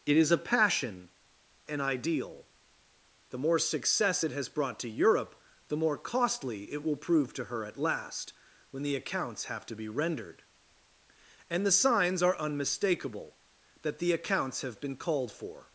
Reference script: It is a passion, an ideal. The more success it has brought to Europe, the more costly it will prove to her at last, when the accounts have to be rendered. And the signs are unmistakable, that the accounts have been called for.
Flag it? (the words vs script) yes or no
no